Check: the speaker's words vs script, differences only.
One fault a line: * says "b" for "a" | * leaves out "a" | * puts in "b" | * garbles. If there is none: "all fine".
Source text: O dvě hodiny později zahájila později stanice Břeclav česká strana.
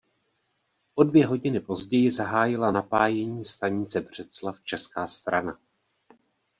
* says "napájení" for "později"